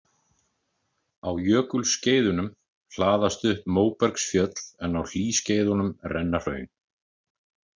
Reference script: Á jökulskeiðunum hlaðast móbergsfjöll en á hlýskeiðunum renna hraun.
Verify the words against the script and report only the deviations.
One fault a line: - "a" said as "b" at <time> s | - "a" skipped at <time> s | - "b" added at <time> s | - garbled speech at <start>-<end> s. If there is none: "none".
- "upp" added at 3.5 s